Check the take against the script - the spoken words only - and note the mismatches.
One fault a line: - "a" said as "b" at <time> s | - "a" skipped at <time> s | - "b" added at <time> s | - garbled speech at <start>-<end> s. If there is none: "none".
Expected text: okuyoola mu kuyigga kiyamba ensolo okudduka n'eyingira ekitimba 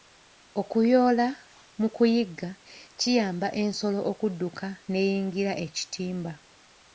none